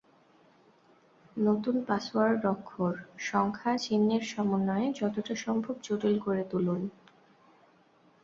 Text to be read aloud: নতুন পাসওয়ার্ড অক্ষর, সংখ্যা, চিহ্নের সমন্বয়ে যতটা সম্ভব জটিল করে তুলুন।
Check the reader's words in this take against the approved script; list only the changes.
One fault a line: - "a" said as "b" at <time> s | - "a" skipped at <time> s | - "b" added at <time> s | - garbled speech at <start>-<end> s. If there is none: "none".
none